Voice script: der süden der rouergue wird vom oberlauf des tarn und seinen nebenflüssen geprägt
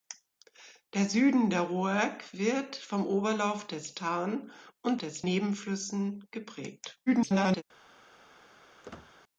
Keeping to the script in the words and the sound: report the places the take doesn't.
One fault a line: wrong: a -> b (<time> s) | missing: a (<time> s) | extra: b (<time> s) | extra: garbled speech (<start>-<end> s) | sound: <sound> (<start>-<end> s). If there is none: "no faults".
wrong: seinen -> des (5.0 s)
extra: garbled speech (7.1-7.6 s)
sound: squeak (8.8-9.1 s)